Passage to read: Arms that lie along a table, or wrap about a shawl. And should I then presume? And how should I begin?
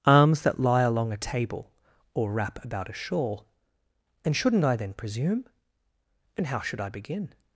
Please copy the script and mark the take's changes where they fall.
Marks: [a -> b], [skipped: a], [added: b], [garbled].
Arms that lie along a table, or wrap about a shawl. And [should -> shouldn't] I then presume? And how should I begin?